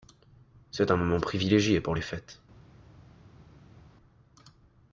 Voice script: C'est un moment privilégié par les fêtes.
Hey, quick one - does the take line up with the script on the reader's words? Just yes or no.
no